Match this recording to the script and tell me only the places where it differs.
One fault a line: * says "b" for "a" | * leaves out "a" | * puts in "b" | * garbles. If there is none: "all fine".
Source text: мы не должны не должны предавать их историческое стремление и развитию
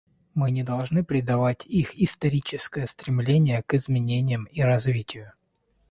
* leaves out "не должны"
* puts in "к изменениям"